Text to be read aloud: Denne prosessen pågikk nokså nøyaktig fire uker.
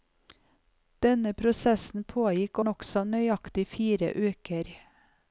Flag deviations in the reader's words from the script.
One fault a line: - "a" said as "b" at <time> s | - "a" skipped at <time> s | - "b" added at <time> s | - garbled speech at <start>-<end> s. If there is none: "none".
none